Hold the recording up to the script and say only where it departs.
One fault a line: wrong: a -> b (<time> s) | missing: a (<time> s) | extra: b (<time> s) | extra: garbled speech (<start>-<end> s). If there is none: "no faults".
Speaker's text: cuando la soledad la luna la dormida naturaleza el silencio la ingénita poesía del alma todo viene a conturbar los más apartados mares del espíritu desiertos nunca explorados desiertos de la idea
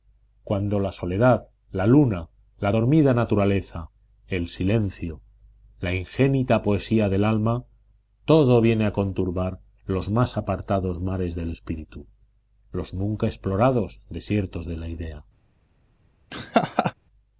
wrong: desiertos -> los (12.7 s)